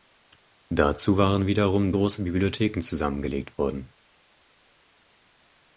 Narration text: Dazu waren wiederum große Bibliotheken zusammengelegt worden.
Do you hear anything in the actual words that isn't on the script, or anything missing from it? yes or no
no